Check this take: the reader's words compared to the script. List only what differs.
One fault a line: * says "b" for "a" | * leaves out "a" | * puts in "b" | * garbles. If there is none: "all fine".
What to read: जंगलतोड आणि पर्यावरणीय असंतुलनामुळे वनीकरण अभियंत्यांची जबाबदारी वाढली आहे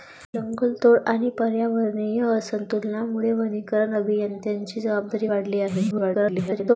* garbles